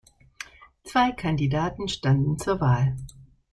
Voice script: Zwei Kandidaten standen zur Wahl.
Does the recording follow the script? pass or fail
pass